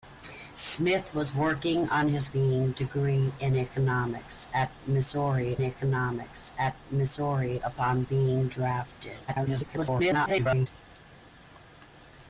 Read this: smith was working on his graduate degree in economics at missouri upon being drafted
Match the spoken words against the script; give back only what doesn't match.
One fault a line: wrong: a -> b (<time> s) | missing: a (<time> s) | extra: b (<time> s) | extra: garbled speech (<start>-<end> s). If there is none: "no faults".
wrong: graduate -> being (2.3 s)
extra: economics at missouri (5.6 s)
extra: garbled speech (9.3-10.7 s)